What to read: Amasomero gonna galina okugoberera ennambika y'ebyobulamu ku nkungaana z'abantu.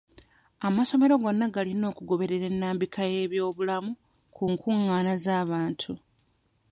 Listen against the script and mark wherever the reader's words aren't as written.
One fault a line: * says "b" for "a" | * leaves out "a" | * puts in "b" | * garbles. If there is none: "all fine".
all fine